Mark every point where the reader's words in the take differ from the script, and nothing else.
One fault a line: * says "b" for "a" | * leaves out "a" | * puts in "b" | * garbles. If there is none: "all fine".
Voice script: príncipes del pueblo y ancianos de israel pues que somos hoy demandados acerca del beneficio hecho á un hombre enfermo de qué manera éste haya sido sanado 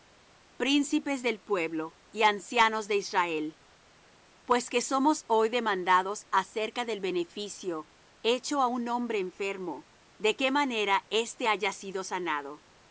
all fine